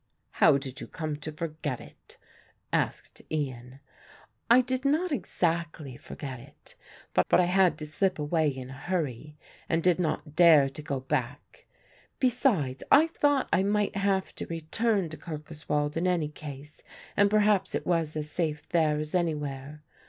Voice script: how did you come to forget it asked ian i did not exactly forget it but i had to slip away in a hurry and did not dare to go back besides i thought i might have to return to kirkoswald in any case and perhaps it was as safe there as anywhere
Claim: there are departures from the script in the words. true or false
true